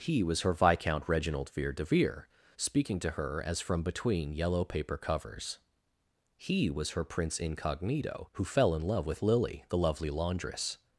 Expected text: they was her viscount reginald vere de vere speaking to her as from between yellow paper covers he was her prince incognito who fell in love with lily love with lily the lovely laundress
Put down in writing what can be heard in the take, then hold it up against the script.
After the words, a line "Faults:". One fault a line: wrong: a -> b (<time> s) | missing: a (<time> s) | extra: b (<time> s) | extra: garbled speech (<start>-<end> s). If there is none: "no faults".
he was her viscount reginald vere de vere speaking to her as from between yellow paper covers he was her prince incognito who fell in love with lily the lovely laundress
Faults:
wrong: they -> he (0.0 s)
missing: love with lily (9.7 s)